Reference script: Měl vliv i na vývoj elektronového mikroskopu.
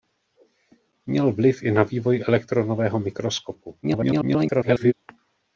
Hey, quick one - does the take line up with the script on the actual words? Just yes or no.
no